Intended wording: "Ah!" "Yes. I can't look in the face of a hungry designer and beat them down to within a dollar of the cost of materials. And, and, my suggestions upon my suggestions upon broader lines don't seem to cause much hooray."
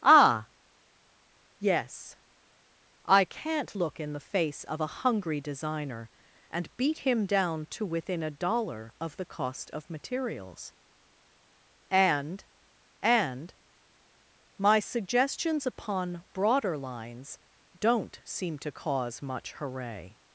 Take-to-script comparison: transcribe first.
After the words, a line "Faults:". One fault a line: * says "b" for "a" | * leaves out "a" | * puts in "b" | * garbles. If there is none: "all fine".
"Ah!" "Yes. I can't look in the face of a hungry designer and beat him down to within a dollar of the cost of materials. And, and, my suggestions upon broader lines don't seem to cause much hooray."
Faults:
* says "him" for "them"
* leaves out "my suggestions upon"